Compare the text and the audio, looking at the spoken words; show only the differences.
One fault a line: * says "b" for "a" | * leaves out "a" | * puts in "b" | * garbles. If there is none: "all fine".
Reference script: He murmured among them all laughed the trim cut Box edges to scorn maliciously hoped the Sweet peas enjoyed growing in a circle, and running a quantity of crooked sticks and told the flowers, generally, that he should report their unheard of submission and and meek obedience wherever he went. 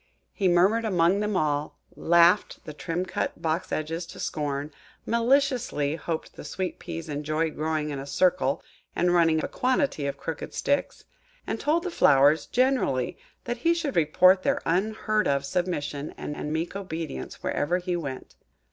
all fine